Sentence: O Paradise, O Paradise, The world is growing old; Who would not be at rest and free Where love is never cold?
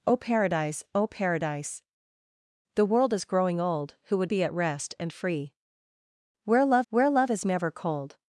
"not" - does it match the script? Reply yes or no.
no